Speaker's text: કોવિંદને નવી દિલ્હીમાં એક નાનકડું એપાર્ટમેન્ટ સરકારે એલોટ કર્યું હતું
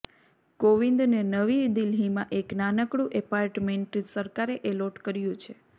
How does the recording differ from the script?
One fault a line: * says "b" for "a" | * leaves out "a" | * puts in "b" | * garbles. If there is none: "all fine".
* says "છે" for "હતું"